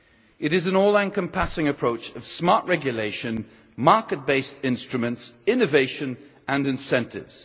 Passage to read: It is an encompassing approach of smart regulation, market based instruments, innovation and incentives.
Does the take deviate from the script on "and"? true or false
false